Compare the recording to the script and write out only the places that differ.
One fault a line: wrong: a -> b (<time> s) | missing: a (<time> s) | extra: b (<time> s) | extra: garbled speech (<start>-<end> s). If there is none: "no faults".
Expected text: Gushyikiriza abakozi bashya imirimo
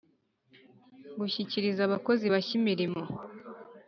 no faults